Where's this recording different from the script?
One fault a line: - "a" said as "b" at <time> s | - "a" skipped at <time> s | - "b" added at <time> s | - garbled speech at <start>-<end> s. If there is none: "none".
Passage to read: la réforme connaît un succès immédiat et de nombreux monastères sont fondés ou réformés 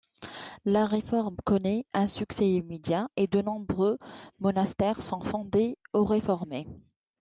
none